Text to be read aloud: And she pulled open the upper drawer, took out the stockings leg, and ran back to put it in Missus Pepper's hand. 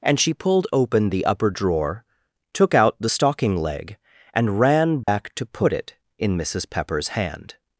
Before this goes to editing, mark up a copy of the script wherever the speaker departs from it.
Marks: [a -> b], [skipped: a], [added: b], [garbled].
And she pulled open the upper drawer, took out the [stockings -> stocking] leg, and ran back to put it in Missus Pepper's hand.